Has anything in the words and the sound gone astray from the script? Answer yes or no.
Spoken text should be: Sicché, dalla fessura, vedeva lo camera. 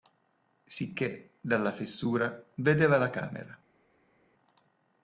yes